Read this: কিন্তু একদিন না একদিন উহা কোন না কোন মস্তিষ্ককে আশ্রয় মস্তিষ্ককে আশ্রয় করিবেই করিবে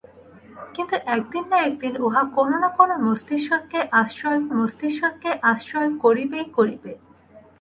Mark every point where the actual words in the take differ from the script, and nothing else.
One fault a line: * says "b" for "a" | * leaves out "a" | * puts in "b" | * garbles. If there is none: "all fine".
all fine